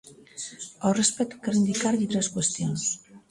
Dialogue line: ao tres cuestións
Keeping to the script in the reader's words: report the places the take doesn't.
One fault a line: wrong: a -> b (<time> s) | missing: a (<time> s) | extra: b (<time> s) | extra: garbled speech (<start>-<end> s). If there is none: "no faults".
extra: respecto quero indicarlle (1.0 s)